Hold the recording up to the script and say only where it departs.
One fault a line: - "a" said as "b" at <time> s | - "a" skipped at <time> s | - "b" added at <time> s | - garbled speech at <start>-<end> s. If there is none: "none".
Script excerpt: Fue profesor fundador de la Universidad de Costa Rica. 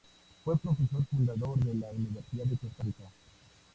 none